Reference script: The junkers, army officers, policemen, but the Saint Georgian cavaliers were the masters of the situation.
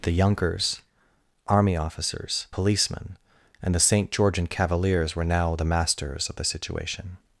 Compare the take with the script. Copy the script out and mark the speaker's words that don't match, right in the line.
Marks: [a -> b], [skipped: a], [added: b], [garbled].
The junkers, army officers, policemen, [but -> and] the Saint Georgian cavaliers were [added: now] the masters of the situation.